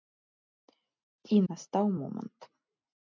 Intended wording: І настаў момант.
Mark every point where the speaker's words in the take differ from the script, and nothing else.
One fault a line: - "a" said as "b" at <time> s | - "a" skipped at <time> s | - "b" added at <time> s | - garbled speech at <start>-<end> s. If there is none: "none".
none